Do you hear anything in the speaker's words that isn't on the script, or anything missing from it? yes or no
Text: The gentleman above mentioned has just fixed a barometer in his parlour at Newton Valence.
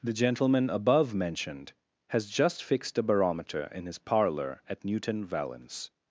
no